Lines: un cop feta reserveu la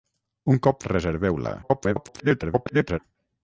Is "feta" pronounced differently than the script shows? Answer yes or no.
yes